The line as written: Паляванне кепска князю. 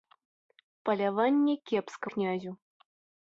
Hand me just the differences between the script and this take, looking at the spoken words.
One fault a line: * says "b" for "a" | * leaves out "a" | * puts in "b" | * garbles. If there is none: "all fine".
all fine